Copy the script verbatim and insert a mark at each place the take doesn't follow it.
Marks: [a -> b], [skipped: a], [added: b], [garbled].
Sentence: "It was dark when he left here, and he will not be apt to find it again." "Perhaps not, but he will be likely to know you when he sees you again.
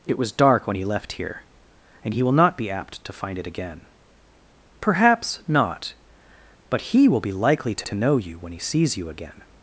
"It was dark when he left here, and he will not be apt to find it again." "Perhaps not, but he will be likely to [added: to] know you when he sees you again.